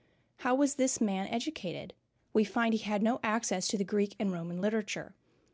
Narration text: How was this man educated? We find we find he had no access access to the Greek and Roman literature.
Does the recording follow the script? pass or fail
fail